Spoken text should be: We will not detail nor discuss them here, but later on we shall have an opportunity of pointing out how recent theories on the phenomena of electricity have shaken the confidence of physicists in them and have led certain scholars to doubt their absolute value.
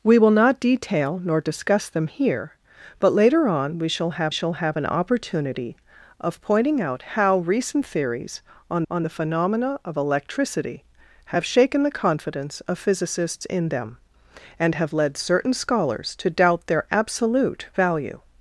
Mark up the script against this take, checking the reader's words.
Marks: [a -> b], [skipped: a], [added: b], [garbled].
We will not detail nor discuss them here, but later on we shall have [added: shall have] an opportunity of pointing out how recent theories on [added: on] the phenomena of electricity have shaken the confidence of physicists in them and have led certain scholars to doubt their absolute value.